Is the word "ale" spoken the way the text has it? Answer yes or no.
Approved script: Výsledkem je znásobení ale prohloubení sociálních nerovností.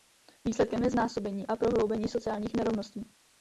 no